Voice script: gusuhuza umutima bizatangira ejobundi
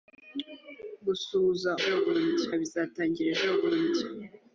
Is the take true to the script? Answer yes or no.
no